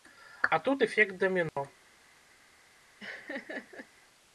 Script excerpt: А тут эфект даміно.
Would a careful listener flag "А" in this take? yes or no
no